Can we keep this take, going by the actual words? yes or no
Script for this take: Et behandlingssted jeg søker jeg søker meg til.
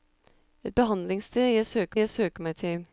yes